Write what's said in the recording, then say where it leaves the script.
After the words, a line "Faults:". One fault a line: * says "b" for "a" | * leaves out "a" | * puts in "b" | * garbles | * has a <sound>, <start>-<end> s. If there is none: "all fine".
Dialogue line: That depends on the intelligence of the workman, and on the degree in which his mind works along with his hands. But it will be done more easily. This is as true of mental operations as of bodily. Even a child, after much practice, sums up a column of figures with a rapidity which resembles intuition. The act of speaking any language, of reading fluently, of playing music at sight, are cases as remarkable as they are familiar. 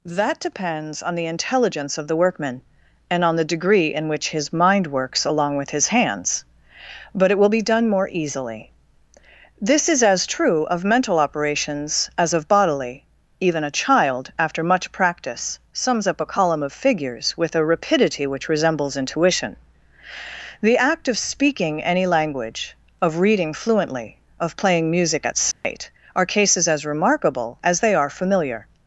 That depends on the intelligence of the workman, and on the degree in which his mind works along with his hands. But it will be done more easily. This is as true of mental operations as of bodily. Even a child, after much practice, sums up a column of figures with a rapidity which resembles intuition. The act of speaking any language, of reading fluently, of playing music at sight, are cases as remarkable as they are familiar.
Faults:
* has a dropout, 25.5-25.6 s